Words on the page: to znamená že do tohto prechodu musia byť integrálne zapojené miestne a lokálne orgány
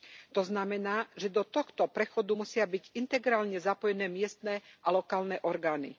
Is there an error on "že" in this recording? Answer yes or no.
no